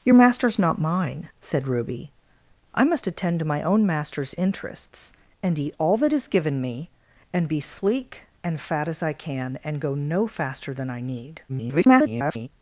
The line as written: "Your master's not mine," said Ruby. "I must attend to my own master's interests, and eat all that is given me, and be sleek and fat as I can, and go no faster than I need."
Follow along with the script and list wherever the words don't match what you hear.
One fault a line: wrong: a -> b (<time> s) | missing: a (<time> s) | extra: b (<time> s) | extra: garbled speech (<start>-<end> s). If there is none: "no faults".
extra: garbled speech (11.5-12.5 s)